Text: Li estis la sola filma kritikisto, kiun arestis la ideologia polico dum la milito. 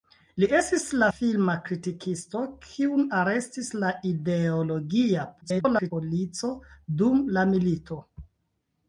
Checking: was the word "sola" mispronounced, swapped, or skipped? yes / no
yes